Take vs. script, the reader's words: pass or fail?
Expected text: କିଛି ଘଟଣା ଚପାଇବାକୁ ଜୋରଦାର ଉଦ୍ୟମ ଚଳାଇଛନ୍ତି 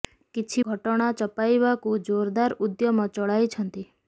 pass